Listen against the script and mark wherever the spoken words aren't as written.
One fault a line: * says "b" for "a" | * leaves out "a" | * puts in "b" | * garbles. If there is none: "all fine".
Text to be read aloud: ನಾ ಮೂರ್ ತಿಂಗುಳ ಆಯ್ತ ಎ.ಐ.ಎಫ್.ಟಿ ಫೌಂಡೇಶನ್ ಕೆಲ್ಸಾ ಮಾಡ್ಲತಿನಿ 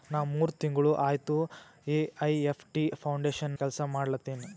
all fine